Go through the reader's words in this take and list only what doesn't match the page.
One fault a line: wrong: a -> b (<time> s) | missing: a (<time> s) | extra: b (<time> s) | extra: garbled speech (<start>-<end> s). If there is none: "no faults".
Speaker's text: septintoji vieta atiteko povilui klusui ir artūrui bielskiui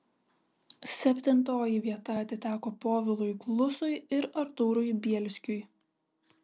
no faults